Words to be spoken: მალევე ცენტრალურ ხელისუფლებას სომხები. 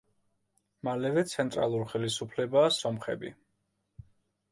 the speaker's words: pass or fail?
pass